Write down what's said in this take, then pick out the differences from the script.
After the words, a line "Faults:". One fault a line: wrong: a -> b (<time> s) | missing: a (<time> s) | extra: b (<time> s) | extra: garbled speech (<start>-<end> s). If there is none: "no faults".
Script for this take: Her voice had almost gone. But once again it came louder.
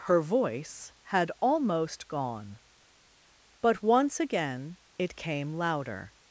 Her voice had almost gone. But once again it came louder.
Faults:
no faults